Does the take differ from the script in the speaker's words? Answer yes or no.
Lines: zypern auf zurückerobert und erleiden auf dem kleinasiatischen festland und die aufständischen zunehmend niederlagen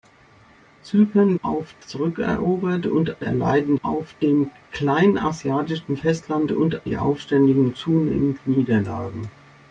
no